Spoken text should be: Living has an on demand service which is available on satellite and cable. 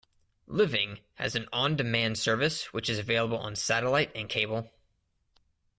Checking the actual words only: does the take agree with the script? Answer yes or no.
yes